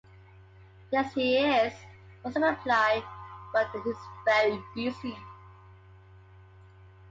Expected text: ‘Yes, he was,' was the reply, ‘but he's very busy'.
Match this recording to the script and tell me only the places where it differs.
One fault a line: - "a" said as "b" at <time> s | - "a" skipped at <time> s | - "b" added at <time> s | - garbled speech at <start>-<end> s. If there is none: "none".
- "was" said as "is" at 1.4 s